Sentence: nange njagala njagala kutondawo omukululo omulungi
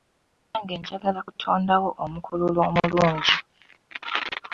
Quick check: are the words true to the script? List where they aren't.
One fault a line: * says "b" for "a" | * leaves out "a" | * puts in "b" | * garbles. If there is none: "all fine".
* leaves out "njagala"